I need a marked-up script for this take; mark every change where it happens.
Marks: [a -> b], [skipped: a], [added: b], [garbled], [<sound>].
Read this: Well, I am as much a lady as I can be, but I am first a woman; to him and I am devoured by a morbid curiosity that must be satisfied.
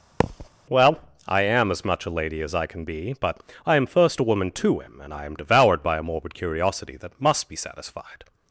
[thud] Well, I am as much a lady as I can be, but I am first a woman; to him and I am devoured by a morbid curiosity that must be satisfied.